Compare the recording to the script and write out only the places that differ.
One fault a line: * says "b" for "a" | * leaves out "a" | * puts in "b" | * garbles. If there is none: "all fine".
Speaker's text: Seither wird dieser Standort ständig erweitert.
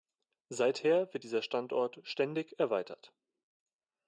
all fine